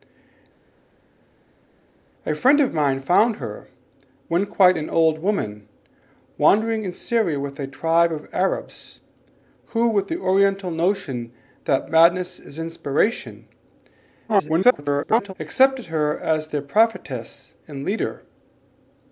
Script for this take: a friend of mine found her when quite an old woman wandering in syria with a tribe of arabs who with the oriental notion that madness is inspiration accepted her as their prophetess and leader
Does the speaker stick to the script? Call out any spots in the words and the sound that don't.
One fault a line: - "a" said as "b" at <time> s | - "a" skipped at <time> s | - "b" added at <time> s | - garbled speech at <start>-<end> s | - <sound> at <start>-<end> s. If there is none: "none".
- garbled speech at 14.3-15.3 s